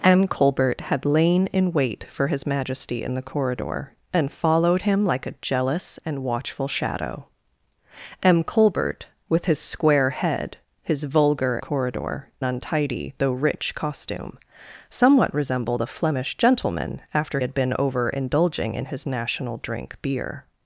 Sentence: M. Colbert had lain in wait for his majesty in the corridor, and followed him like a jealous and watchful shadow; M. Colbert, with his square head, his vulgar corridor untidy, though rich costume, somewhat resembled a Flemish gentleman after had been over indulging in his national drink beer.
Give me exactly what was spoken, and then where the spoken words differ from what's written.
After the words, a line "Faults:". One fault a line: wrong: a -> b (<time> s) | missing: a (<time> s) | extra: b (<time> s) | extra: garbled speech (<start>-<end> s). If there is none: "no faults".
M. Colbert had lain in wait for his majesty in the corridor, and followed him like a jealous and watchful shadow; M. Colbert, with his square head, his vulgar corridor untidy, though rich costume, somewhat resembled a Flemish gentleman after had been over indulging in his national drink beer.
Faults:
no faults